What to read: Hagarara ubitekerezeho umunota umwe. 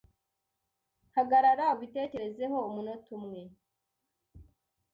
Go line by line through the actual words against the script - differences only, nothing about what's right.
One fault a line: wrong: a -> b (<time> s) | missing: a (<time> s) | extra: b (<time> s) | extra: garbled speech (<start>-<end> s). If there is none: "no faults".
no faults